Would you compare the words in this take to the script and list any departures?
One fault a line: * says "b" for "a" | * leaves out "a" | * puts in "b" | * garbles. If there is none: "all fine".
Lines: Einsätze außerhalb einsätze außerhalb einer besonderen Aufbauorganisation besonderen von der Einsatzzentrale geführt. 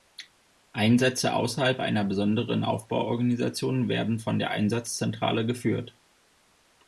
* leaves out "einsätze außerhalb"
* says "werden" for "besonderen"